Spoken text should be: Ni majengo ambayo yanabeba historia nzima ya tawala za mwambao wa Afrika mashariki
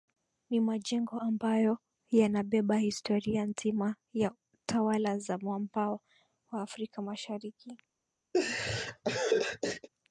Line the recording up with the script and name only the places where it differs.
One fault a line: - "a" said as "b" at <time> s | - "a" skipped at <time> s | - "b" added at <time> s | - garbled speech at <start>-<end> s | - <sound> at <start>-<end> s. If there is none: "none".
- laugh at 8.3-9.9 s